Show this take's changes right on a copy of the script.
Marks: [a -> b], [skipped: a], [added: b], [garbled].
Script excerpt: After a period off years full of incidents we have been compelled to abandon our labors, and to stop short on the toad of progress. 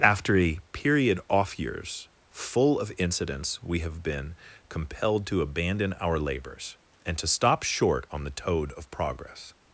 After a period off years full of incidents we have been compelled to abandon our labors, and to stop short on the toad of progress.